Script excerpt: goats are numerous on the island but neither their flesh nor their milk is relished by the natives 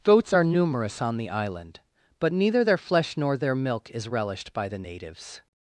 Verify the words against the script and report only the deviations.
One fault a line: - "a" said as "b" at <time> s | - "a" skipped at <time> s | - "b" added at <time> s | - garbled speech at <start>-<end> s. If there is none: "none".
none